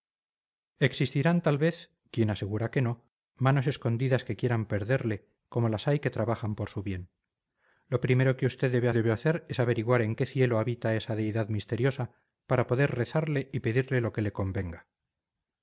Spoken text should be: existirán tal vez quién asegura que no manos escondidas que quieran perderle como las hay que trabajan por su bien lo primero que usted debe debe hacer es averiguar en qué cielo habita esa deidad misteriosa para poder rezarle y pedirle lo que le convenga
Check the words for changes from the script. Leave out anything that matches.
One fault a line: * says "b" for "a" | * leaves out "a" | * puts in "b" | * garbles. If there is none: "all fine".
all fine